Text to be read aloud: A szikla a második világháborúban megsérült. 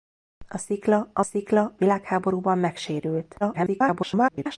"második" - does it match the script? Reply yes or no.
no